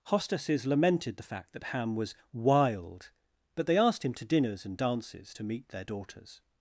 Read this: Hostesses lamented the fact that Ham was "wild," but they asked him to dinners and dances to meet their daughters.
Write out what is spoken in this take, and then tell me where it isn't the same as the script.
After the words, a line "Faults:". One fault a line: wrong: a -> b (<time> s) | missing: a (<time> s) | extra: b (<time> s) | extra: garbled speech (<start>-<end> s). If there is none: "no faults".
Hostesses lamented the fact that Ham was "wild," but they asked him to dinners and dances to meet their daughters.
Faults:
no faults